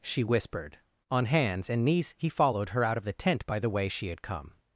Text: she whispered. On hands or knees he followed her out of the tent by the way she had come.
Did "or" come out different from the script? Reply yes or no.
yes